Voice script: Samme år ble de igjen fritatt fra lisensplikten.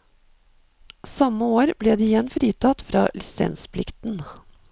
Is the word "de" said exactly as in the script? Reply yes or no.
yes